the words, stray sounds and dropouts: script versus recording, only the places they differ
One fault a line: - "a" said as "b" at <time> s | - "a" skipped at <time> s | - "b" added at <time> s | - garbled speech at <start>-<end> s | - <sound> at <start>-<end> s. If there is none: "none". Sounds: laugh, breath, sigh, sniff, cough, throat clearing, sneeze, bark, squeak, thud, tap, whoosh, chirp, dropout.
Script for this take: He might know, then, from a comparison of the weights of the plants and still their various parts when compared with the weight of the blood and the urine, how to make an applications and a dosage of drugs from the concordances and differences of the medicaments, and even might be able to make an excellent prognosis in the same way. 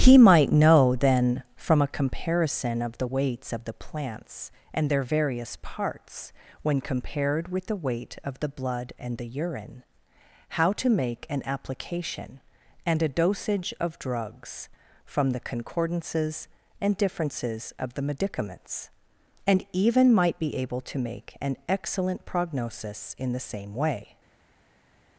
- "still" skipped at 4.9 s
- "applications" said as "application" at 11.4 s